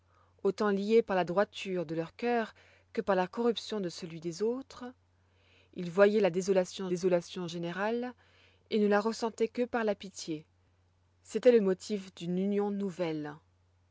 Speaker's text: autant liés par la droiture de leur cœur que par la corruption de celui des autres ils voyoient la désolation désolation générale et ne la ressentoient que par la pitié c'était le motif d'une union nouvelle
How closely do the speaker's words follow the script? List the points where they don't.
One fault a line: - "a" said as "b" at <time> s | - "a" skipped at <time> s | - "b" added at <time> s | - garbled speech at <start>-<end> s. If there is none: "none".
none